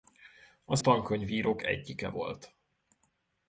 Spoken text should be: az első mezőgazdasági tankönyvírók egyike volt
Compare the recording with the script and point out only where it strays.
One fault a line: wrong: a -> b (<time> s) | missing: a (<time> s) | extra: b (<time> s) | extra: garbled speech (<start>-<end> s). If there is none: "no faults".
missing: első mezőgazdasági (0.8 s)